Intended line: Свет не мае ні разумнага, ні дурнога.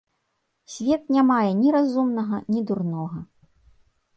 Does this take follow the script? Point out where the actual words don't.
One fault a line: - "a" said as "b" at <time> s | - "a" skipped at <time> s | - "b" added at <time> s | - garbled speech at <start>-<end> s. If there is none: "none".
none